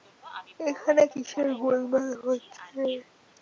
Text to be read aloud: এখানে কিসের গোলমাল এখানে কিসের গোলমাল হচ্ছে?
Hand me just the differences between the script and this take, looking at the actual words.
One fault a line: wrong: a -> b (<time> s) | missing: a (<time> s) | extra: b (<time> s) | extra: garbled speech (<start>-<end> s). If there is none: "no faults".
missing: এখানে কিসের গোলমাল (2.1 s)